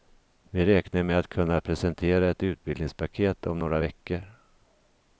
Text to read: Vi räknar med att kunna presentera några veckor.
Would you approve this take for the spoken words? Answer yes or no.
no